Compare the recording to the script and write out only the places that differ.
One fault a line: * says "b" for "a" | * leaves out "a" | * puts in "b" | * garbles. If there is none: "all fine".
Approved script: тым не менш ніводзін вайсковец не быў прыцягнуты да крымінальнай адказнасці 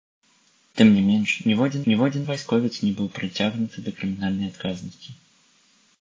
* puts in "ніводзін"